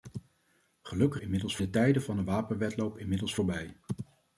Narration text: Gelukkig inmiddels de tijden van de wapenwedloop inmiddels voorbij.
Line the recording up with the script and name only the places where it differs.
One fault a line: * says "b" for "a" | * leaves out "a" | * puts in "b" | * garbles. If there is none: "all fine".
all fine